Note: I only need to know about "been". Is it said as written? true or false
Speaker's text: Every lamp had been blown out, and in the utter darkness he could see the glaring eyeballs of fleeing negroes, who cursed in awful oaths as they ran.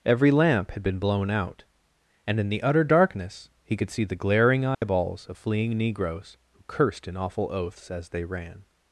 true